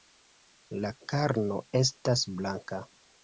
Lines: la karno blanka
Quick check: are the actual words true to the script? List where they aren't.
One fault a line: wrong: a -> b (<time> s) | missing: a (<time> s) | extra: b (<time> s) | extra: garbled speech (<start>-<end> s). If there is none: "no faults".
extra: estas (1.8 s)